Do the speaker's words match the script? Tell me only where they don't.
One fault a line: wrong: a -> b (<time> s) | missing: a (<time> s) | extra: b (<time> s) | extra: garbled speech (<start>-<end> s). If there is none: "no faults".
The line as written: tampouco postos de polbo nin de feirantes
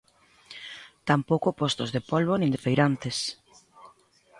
no faults